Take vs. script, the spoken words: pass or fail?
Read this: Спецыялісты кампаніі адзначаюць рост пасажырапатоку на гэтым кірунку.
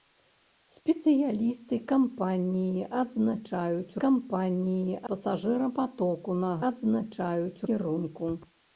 fail